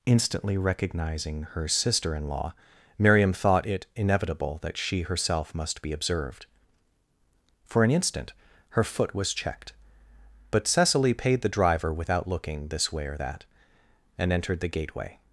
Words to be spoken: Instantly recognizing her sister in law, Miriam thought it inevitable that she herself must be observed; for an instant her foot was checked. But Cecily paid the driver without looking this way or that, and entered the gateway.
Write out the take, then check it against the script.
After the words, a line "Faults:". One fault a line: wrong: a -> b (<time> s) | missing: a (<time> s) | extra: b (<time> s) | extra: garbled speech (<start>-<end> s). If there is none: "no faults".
Instantly recognizing her sister in law, Miriam thought it inevitable that she herself must be observed; for an instant her foot was checked. But Cecily paid the driver without looking this way or that, and entered the gateway.
Faults:
no faults